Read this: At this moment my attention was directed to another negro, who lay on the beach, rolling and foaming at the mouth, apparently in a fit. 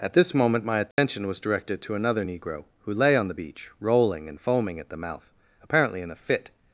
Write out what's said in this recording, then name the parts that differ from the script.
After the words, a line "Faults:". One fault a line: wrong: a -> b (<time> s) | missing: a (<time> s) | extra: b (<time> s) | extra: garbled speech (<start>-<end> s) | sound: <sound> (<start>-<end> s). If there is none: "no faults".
At this moment my attention was directed to another negro, who lay on the beach, rolling and foaming at the mouth, apparently in a fit.
Faults:
sound: dropout (0.9-1.0 s)